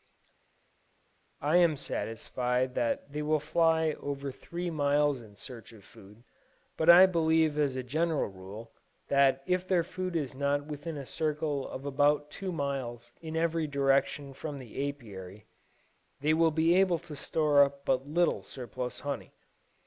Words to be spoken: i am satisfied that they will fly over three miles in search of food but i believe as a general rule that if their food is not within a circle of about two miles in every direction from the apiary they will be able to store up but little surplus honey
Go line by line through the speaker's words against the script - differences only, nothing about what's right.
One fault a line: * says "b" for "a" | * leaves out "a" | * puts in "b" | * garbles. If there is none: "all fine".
all fine